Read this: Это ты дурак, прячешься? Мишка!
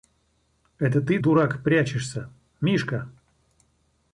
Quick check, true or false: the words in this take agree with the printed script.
true